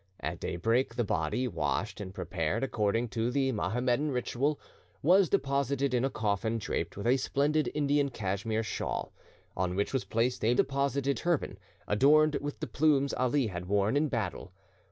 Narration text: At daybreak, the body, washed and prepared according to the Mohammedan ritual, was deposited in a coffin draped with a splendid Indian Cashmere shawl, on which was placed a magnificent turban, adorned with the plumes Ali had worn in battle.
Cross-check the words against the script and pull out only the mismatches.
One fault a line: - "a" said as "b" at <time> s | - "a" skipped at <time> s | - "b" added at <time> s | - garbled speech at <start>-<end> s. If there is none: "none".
- "magnificent" said as "deposited" at 10.5 s